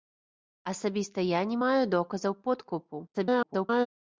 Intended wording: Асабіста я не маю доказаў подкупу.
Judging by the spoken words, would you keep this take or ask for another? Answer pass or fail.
fail